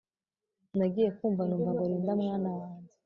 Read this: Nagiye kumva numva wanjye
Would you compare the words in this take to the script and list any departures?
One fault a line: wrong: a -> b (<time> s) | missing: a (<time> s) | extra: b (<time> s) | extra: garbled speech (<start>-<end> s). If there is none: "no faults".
extra: ngo Linda mwana (1.7 s)